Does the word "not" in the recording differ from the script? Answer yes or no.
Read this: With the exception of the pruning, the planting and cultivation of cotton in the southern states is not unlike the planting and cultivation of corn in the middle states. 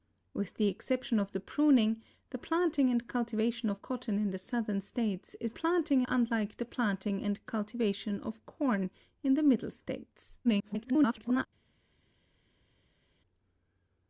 yes